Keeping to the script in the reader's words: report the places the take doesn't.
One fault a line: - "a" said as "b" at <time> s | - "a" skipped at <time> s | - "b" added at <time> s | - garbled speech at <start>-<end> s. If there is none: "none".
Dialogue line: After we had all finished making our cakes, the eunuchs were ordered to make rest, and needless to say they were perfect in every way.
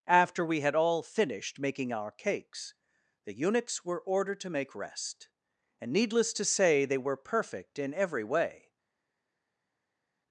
none